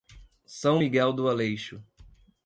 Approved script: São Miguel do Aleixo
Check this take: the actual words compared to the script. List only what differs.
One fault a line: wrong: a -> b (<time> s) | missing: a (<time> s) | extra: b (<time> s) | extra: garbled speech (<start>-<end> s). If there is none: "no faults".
no faults